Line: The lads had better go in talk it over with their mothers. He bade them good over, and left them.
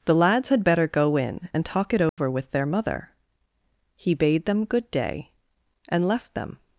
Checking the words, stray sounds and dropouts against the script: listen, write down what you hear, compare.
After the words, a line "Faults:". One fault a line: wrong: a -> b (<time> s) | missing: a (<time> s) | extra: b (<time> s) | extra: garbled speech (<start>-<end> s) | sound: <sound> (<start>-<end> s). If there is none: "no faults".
The lads had better go in and talk it over with their mother. He bade them good day, and left them.
Faults:
extra: and (1.5 s)
sound: dropout (2.1-2.2 s)
wrong: mothers -> mother (2.6 s)
wrong: over -> day (4.9 s)